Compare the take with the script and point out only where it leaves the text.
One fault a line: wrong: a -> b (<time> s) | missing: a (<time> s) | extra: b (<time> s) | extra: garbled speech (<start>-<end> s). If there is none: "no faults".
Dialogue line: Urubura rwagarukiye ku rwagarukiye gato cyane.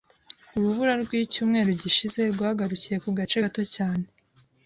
extra: rwicyumweru gishize (1.0 s)
wrong: rwagarukiye -> gace (3.2 s)